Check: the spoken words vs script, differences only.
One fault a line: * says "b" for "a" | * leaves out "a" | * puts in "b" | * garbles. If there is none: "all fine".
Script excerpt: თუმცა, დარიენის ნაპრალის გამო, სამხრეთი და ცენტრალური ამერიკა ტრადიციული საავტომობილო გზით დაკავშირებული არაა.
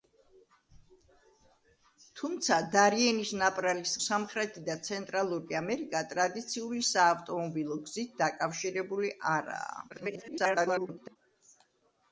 * leaves out "გამო"
* garbles